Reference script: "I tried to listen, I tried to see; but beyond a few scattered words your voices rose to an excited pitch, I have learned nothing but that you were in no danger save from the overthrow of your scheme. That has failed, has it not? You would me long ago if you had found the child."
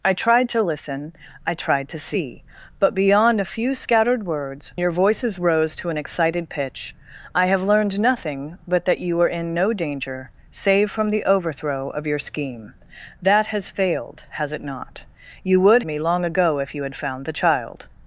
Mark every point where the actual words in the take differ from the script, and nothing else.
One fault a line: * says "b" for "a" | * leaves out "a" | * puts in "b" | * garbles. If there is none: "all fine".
all fine